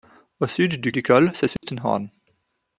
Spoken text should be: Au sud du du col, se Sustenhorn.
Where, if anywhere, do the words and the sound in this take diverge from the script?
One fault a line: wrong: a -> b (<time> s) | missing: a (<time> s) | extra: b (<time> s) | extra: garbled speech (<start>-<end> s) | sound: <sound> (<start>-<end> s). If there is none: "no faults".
sound: dropout (1.6-1.6 s)